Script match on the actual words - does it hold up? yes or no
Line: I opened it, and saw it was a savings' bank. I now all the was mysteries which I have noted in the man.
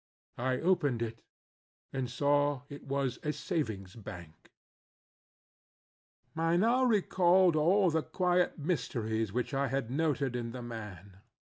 no